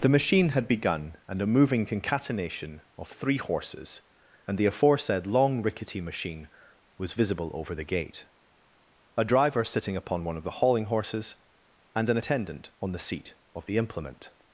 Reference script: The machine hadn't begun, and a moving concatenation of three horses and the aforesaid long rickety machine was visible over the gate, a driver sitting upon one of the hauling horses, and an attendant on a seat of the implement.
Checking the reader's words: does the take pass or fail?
fail